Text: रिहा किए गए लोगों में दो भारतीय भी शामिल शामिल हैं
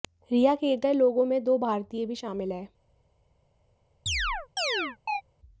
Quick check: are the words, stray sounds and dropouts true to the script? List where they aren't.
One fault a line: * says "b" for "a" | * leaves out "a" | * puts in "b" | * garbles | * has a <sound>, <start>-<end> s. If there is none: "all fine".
* leaves out "शामिल"
* has a chirp, 4.1-5.2 s